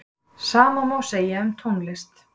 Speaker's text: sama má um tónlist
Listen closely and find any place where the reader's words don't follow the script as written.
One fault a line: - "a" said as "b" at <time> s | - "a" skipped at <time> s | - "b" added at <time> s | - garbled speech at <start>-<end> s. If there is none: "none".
- "segja" added at 1.1 s